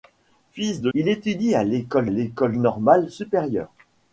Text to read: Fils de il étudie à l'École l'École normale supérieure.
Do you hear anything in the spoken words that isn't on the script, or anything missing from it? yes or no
no